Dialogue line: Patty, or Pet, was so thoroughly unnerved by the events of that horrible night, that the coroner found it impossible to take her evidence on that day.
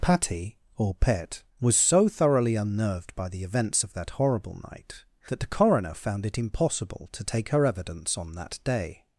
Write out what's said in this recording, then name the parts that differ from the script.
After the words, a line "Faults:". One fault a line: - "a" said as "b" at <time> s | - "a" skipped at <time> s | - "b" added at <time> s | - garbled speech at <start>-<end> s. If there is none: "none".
Patty, or Pet, was so thoroughly unnerved by the events of that horrible night, that the coroner found it impossible to take her evidence on that day.
Faults:
none